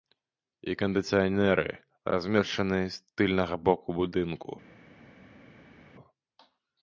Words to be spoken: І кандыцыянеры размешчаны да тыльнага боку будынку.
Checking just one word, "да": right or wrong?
wrong